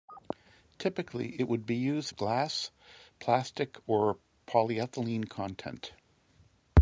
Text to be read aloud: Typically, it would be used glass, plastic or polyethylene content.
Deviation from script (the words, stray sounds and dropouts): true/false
false